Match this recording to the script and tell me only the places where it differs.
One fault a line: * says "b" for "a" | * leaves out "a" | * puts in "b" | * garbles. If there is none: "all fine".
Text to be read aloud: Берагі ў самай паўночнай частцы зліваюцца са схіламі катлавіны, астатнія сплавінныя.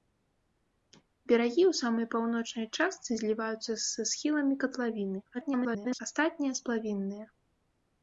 * garbles